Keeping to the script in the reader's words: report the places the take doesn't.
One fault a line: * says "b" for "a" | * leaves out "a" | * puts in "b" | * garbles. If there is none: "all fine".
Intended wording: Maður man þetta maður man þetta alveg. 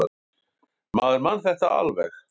* leaves out "maður man þetta"